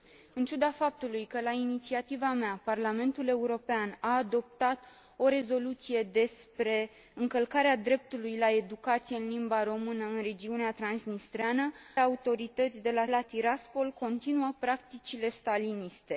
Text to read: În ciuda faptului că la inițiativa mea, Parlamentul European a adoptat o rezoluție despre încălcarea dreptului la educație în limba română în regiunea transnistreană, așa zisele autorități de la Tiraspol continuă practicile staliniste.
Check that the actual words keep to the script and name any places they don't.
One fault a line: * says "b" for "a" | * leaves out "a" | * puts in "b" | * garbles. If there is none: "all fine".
* leaves out "așa zisele"
* puts in "la"